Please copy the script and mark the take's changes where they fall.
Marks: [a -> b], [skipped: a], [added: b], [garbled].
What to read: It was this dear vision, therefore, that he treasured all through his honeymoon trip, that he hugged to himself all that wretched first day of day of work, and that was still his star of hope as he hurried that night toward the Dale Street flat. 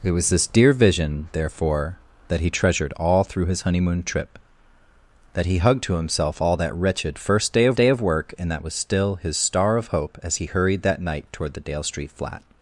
It was this dear vision, therefore, that he treasured all through his honeymoon trip, that he hugged to himself all that wretched first day of day of work, and that was still his star of hope as he hurried that night toward the Dale Street flat.